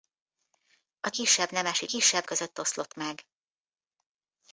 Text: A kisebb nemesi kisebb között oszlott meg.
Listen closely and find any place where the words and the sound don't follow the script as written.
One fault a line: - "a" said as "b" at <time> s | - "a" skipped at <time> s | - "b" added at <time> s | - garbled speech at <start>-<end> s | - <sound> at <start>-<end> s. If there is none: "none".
none